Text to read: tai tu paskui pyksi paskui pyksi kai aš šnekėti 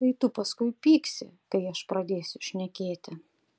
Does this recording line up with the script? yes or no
no